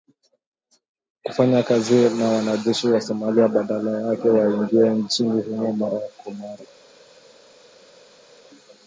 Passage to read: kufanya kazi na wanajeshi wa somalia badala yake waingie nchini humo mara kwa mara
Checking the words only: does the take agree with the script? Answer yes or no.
yes